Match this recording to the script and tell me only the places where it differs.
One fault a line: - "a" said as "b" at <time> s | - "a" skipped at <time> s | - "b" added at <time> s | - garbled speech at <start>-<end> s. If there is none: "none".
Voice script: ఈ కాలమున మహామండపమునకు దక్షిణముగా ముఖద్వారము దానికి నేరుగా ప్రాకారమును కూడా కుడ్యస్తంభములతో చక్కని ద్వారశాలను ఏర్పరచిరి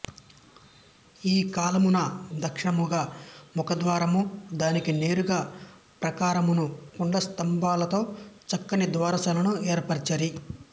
- "మహామండపమునకు" skipped at 2.0 s
- "కూడా" skipped at 6.6 s